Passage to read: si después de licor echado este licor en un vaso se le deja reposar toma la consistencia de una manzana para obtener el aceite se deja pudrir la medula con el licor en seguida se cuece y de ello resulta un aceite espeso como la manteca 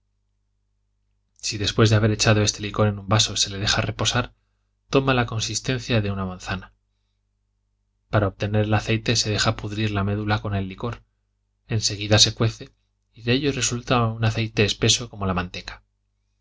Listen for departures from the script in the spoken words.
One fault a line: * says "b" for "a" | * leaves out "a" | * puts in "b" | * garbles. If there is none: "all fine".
* says "haber" for "licor"